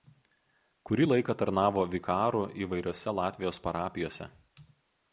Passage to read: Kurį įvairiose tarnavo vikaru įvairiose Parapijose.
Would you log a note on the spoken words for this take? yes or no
yes